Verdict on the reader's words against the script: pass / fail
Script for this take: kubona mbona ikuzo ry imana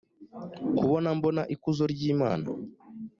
pass